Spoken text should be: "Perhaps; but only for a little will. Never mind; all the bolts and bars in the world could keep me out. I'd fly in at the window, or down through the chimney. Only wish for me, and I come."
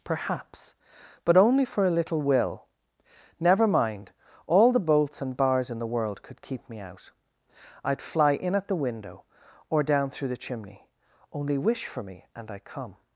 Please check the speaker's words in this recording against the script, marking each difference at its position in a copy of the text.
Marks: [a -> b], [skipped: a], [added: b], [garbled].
"Perhaps; but only for a little will. Never mind; all the bolts and bars in the world could keep me out. I'd fly in at the window, or down through the chimney. Only wish for me, and I come."